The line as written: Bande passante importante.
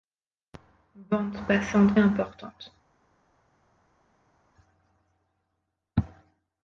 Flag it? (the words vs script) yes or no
no